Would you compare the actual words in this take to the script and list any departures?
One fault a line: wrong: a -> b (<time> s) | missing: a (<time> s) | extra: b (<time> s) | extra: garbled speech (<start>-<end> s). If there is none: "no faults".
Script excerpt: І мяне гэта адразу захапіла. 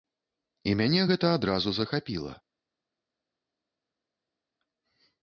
no faults